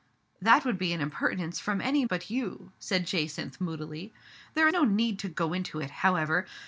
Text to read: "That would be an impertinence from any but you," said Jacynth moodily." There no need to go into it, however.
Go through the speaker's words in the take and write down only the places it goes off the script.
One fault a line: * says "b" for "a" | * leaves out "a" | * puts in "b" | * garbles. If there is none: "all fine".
all fine